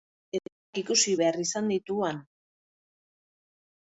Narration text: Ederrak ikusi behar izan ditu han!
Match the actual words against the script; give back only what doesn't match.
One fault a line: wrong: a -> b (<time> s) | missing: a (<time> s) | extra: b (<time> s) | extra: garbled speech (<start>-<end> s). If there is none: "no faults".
no faults